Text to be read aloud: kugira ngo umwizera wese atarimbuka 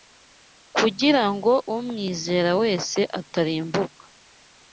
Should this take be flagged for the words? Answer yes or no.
no